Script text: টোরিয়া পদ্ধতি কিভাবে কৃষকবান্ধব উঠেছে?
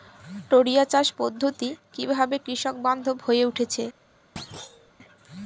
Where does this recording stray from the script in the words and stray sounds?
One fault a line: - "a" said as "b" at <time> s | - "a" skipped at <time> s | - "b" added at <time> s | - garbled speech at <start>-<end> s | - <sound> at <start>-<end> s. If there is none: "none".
- "চাষ" added at 0.8 s
- "হয়ে" added at 3.2 s
- thud at 4.4-4.9 s